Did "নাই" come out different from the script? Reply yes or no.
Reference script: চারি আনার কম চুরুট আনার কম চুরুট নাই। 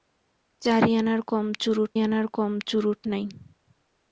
no